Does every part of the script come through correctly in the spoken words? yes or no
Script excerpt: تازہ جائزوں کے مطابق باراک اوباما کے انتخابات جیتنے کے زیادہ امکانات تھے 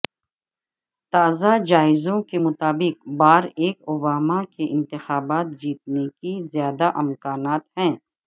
no